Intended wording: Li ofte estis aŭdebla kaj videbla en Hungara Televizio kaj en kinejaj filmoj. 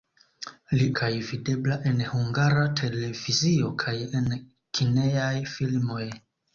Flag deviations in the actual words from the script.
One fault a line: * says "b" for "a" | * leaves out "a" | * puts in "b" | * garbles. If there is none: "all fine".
* leaves out "ofte estis aŭdebla"